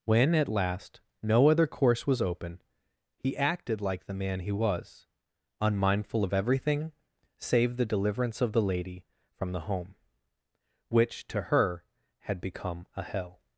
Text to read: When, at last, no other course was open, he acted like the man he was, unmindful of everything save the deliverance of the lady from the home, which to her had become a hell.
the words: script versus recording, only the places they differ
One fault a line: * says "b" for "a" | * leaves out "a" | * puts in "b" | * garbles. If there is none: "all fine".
all fine